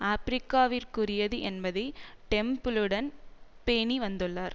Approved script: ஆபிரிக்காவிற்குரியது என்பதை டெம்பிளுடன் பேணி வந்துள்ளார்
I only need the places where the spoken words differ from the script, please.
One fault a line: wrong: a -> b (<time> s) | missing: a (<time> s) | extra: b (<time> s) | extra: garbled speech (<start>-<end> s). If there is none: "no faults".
no faults